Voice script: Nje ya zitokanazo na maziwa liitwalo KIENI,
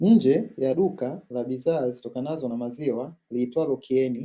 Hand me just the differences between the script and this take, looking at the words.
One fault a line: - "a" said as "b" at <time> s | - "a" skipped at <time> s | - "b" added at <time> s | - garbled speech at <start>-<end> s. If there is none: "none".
- "duka la bidhaa" added at 0.7 s